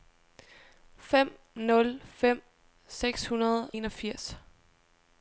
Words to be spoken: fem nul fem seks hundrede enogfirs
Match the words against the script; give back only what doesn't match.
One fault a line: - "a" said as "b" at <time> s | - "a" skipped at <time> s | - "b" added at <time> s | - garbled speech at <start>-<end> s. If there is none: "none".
none